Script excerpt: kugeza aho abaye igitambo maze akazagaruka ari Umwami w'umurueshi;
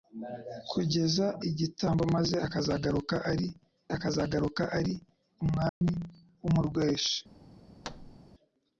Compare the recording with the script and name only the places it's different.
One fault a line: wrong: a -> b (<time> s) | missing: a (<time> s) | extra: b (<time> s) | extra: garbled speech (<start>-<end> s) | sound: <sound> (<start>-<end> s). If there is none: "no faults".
wrong: aho abaye igitambo maze -> igitambo maze akazagaruka ari (1.5 s)
sound: dropout (5.7-5.8 s)
sound: thud (7.8-8.2 s)